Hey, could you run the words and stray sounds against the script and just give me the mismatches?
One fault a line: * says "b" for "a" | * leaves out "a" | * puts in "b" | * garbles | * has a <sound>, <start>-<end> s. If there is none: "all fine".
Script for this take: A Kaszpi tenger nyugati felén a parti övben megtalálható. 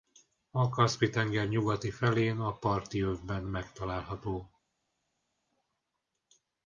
all fine